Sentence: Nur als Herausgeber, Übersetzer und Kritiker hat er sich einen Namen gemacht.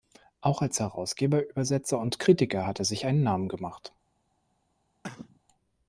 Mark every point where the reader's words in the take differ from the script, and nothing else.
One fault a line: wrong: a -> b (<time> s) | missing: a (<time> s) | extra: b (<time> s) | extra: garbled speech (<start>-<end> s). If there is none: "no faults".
wrong: Nur -> Auch (0.4 s)